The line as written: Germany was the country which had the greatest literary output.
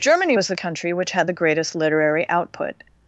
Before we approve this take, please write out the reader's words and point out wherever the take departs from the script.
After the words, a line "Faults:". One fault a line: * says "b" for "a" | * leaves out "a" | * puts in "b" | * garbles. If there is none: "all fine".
Germany was the country which had the greatest literary output.
Faults:
all fine